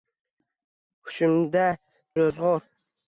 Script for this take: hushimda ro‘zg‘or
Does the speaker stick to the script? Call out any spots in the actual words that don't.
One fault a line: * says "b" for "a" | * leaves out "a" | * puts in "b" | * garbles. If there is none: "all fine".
all fine